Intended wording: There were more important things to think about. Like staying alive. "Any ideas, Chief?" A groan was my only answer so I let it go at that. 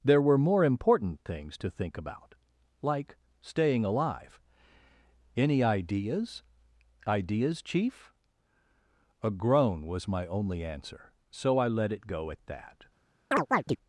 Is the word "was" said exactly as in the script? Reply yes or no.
yes